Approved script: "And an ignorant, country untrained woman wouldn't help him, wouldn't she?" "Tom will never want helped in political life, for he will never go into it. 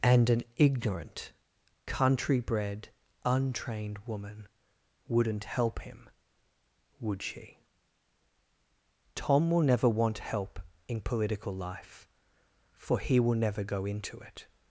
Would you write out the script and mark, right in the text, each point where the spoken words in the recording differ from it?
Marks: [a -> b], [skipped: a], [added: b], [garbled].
"And an ignorant, country [added: bred] untrained woman wouldn't help him, [wouldn't -> would] she?" "Tom will never want [helped -> help] in political life, for he will never go into it.